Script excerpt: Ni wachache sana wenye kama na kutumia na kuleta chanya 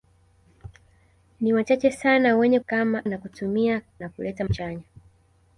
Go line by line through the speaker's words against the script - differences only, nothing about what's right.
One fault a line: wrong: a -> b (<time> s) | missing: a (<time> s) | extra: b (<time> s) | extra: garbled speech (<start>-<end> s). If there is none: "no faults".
no faults